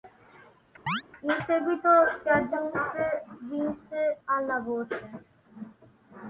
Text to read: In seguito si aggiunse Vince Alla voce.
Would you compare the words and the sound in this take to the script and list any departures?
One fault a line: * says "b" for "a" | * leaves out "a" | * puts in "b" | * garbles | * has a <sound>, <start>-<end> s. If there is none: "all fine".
* has a chirp, 0.9-1.0 s